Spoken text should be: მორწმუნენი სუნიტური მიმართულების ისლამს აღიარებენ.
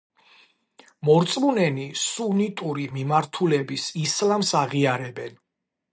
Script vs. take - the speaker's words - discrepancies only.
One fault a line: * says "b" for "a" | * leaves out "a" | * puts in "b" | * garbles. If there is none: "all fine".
all fine